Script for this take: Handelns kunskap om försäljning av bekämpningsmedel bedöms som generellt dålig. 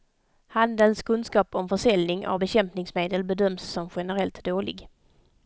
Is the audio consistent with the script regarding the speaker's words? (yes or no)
yes